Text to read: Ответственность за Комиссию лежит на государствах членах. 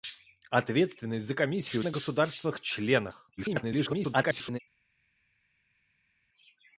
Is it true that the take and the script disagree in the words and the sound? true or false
true